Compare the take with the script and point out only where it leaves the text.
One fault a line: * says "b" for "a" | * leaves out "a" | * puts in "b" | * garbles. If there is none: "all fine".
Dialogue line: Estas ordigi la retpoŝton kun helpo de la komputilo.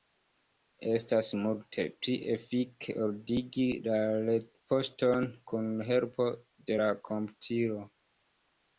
* puts in "multe pli efike"